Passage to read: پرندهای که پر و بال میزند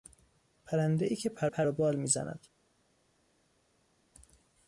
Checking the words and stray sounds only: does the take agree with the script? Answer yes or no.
no